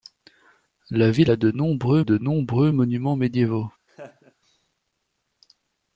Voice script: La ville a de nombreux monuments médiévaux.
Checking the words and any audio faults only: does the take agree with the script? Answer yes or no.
no